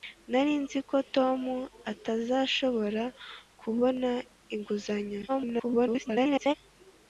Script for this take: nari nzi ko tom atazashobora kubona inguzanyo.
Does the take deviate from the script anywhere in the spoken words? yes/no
yes